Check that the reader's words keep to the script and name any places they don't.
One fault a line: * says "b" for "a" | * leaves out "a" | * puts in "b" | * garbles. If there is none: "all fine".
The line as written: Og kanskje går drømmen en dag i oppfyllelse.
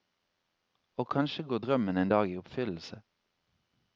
all fine